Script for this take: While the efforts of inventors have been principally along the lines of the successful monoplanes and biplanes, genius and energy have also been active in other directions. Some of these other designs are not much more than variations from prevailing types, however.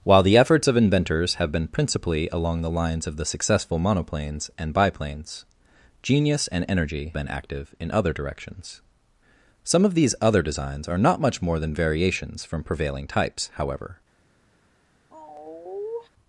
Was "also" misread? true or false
true